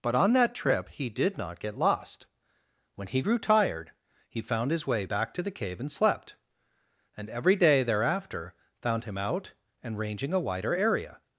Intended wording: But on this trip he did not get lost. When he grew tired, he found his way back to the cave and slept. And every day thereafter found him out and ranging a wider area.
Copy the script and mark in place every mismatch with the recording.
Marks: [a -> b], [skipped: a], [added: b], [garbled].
But on [this -> that] trip he did not get lost. When he grew tired, he found his way back to the cave and slept. And every day thereafter found him out and ranging a wider area.